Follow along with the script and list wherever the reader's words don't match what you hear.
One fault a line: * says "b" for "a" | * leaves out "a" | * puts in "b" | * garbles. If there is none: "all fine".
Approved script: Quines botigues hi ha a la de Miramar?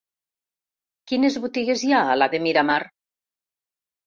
all fine